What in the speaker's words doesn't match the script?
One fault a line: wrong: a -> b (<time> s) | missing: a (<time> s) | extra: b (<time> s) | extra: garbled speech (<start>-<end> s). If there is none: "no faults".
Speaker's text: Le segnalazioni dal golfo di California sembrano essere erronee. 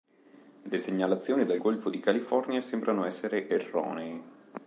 no faults